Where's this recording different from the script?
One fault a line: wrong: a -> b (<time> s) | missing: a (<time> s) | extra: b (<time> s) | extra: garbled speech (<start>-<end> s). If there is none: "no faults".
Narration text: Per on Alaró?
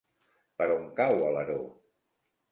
extra: cau (1.0 s)